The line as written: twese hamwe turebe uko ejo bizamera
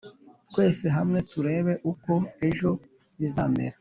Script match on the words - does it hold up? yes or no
yes